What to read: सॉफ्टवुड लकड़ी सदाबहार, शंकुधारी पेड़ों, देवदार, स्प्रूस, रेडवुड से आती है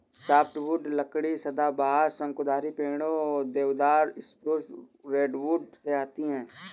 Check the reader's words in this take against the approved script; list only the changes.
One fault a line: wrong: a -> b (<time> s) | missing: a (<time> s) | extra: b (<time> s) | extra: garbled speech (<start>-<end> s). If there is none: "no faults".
no faults